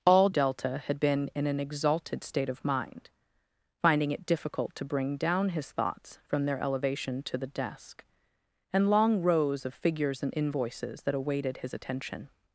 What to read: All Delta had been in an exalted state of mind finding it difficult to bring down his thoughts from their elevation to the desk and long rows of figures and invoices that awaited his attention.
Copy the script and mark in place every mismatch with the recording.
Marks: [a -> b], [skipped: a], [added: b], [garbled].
All Delta had been in an exalted state of mind finding it difficult to bring down his thoughts from their elevation to the desk and long rows of figures and invoices that awaited his attention.